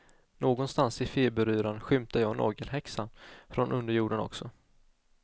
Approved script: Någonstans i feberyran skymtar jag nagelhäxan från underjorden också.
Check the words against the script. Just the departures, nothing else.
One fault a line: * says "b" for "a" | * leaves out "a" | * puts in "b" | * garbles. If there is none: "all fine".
all fine